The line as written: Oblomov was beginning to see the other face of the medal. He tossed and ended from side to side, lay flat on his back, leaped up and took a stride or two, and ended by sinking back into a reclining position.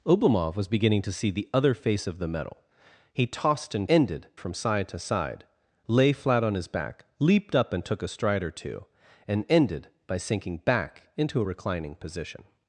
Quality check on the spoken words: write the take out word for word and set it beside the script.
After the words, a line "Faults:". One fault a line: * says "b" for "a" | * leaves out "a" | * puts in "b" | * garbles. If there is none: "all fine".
Oblomov was beginning to see the other face of the medal. He tossed and ended from side to side, lay flat on his back, leaped up and took a stride or two, and ended by sinking back into a reclining position.
Faults:
all fine